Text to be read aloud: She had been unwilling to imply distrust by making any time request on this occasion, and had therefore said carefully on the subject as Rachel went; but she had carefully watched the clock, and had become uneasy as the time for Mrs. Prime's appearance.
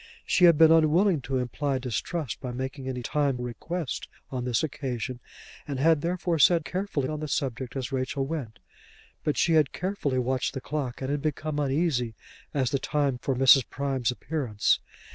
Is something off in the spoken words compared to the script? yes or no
no